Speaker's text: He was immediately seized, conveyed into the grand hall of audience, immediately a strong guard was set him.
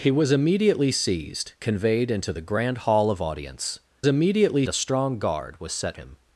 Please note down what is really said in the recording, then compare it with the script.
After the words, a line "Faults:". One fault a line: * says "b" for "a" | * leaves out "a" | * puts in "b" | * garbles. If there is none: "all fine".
He was immediately seized, conveyed into the grand hall of audience, immediately a strong guard was set him.
Faults:
all fine